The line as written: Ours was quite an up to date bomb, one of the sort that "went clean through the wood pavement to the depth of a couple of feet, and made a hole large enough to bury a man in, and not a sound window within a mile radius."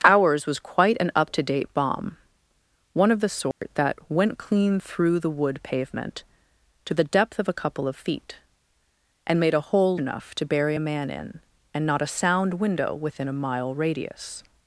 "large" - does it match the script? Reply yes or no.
no